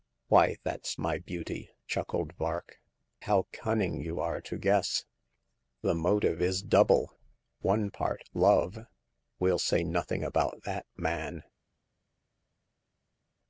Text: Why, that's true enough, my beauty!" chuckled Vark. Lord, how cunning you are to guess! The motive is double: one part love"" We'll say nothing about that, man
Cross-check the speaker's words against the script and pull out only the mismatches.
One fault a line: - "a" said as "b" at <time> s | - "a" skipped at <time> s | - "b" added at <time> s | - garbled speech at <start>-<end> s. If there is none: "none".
- "true enough" skipped at 0.9 s
- "Lord" skipped at 2.8 s